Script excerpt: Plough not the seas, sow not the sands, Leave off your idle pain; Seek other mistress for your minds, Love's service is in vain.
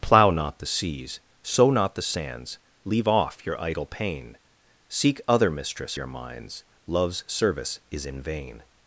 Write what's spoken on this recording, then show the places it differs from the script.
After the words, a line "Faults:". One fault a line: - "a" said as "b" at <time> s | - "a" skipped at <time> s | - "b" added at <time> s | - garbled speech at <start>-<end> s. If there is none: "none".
Plough not the seas, sow not the sands, Leave off your idle pain; Seek other mistress your minds, Love's service is in vain.
Faults:
- "for" skipped at 6.0 s